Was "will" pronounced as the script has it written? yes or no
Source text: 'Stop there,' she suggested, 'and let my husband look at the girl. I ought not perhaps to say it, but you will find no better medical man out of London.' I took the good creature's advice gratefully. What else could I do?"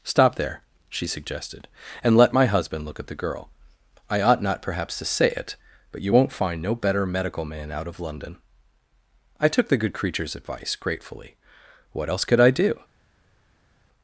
no